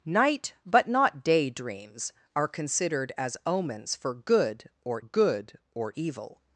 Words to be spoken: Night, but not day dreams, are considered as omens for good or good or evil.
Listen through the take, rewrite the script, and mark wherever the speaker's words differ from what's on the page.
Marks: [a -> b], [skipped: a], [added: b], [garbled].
Night, but not day dreams, are considered as omens for good or good or evil.